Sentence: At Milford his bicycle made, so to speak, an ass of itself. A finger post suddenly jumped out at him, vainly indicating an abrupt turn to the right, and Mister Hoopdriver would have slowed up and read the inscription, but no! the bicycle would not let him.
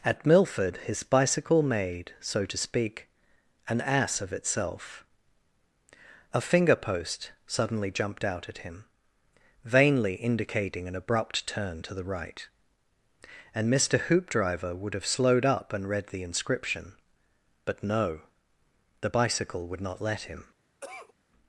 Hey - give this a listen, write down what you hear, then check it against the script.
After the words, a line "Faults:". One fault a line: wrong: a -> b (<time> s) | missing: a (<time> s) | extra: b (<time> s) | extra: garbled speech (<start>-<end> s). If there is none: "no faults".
At Milford his bicycle made, so to speak, an ass of itself. A finger post suddenly jumped out at him, vainly indicating an abrupt turn to the right, and Mister Hoopdriver would have slowed up and read the inscription, but no! the bicycle would not let him.
Faults:
no faults